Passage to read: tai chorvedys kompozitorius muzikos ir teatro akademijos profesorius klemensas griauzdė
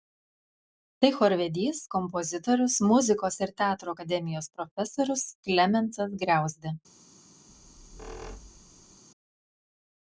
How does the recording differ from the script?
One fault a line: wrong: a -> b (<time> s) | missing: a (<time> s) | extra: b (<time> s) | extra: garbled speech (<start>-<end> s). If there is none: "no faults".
no faults